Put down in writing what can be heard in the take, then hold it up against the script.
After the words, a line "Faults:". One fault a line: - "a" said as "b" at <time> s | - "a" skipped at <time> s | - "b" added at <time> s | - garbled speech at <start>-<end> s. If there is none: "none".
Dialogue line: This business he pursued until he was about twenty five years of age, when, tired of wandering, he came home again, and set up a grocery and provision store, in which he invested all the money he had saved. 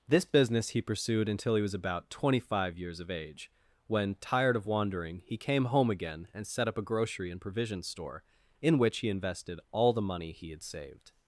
This business he pursued until he was about twenty five years of age, when, tired of wandering, he came home again, and set up a grocery and provision store, in which he invested all the money he had saved.
Faults:
none